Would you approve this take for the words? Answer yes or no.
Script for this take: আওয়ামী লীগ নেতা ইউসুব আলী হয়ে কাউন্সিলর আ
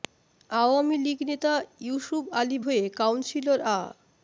yes